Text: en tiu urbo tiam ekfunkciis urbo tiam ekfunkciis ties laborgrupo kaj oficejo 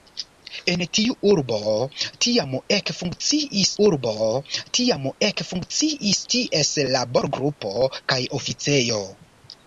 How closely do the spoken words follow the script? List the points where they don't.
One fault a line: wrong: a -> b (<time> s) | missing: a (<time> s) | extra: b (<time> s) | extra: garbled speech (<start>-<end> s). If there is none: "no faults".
no faults